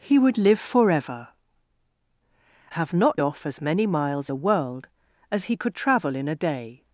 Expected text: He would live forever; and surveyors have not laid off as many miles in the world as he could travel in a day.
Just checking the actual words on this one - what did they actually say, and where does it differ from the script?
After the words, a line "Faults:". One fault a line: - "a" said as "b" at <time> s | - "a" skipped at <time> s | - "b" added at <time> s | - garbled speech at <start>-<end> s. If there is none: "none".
He would live forever; have not off as many miles the world as he could travel in a day.
Faults:
- "and surveyors" skipped at 1.3 s
- "laid" skipped at 3.2 s
- "in" skipped at 4.3 s